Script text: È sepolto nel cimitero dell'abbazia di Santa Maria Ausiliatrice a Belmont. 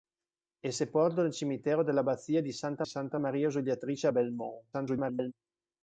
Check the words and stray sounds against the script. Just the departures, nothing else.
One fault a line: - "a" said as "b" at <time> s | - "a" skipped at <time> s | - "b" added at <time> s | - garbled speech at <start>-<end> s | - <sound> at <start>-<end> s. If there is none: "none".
- "Santa" added at 2.8 s
- garbled speech at 4.7-5.3 s